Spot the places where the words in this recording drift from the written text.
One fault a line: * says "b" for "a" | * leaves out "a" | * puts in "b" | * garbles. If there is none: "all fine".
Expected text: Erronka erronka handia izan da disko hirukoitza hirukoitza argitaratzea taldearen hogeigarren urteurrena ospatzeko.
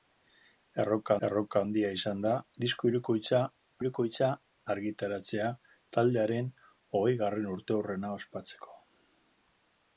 all fine